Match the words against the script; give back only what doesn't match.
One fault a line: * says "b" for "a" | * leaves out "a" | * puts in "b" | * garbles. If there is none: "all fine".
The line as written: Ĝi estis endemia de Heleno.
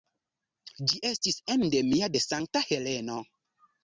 * puts in "Sankta"